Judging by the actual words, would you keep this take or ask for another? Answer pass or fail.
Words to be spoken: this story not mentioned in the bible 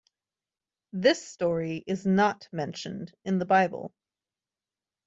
fail